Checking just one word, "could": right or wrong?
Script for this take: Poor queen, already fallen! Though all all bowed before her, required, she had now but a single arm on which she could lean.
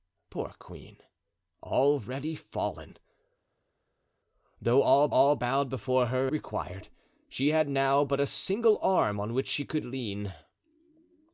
right